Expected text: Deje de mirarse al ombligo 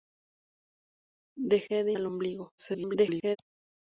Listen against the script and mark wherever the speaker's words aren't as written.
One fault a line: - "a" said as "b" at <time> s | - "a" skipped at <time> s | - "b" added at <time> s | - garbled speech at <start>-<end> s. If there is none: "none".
- "mirarse" skipped at 2.0 s
- garbled speech at 2.6-3.4 s